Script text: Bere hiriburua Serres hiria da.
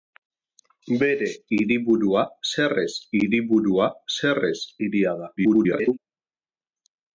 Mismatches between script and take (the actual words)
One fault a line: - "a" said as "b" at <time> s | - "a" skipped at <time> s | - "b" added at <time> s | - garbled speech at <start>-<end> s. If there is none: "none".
- "hiriburua Serres" added at 3.2 s
- garbled speech at 5.4-6.0 s